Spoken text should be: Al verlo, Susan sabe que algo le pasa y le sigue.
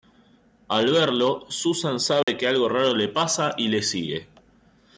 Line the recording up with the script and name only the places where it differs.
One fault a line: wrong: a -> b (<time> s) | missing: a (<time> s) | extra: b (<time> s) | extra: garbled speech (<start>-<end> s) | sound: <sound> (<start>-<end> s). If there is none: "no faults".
sound: dropout (2.2-2.3 s)
extra: raro (2.7 s)